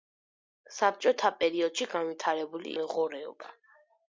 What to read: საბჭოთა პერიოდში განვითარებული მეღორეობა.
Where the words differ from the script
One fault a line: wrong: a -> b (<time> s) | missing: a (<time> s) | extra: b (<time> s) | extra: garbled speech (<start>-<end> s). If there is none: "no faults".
no faults